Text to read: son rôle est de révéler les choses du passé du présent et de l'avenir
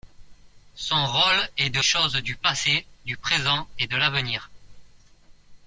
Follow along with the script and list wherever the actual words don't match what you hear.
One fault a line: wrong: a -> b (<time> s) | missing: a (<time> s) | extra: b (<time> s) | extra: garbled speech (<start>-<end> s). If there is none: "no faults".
missing: révéler les (1.8 s)